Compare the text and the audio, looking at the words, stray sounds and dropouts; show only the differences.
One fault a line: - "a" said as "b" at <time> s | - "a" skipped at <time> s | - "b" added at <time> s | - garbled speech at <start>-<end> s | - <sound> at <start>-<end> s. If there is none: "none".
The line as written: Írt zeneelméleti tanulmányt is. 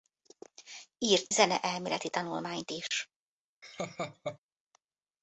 - laugh at 3.6-4.4 s